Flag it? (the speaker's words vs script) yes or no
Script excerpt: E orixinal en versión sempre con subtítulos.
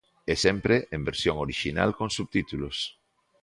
yes